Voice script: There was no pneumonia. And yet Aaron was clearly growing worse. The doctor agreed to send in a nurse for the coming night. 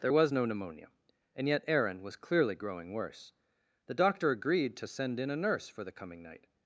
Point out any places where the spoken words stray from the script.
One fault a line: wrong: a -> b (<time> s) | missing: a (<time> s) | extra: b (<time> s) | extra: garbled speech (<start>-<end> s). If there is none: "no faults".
no faults